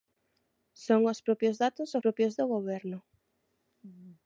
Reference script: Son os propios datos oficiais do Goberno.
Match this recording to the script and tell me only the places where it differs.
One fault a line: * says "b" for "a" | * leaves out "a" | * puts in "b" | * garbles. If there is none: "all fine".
* says "propios" for "oficiais"